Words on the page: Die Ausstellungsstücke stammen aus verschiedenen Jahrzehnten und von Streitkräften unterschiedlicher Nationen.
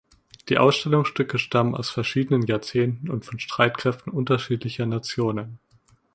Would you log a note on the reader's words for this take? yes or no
no